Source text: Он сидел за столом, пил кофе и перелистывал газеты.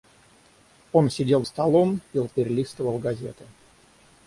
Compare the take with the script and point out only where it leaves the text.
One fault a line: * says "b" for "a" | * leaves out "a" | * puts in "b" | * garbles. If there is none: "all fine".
* leaves out "за"
* leaves out "кофе и"